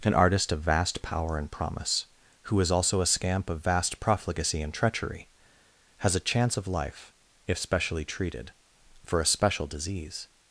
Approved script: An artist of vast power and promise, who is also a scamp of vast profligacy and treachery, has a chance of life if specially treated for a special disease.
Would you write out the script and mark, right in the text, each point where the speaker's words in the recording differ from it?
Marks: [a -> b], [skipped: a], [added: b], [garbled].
An artist of vast power and promise, who is also a scamp of vast profligacy and treachery, has a chance of life if specially treated for a special disease.